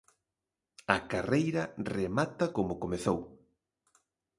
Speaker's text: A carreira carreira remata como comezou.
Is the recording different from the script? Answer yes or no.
yes